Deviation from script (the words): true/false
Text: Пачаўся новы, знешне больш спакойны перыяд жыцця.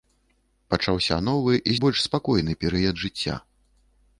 true